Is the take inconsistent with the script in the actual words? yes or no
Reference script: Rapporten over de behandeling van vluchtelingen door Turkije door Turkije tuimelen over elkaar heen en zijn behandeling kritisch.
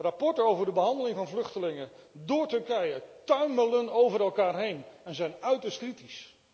yes